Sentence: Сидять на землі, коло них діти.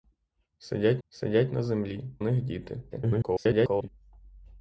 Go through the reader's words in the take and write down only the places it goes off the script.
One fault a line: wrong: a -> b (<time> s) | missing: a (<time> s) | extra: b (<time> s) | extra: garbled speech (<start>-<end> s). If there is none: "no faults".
extra: сидять (1.1 s)
missing: коло (2.1 s)
extra: garbled speech (2.9-3.9 s)